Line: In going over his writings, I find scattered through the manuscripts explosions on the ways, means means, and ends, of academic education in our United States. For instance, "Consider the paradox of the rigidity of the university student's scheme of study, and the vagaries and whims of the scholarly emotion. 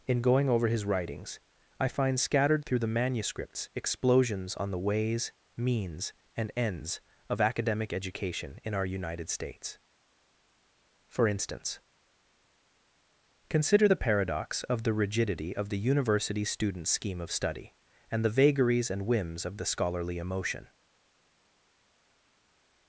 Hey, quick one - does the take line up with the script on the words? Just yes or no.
no